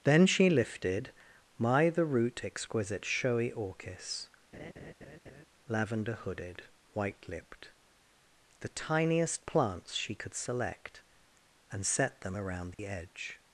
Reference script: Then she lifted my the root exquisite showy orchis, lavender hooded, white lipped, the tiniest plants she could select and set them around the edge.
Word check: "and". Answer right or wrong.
right